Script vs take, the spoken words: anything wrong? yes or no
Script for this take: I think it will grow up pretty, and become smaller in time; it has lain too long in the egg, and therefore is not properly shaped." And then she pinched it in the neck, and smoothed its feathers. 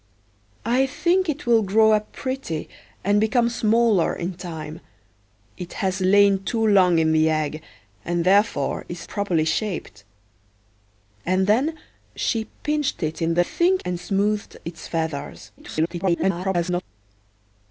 yes